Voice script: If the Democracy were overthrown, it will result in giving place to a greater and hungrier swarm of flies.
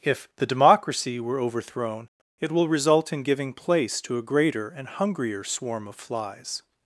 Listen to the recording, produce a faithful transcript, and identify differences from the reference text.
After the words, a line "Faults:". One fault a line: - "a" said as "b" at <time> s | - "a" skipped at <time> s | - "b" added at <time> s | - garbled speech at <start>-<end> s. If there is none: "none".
If the Democracy were overthrown, it will result in giving place to a greater and hungrier swarm of flies.
Faults:
none